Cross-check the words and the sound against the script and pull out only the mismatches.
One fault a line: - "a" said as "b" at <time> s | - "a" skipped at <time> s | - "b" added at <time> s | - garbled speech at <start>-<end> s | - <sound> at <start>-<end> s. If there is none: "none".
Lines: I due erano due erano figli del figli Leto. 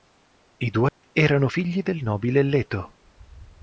- dropout at 0.9-1.0 s
- "due erano" skipped at 1.5 s
- "figli" said as "nobile" at 2.0 s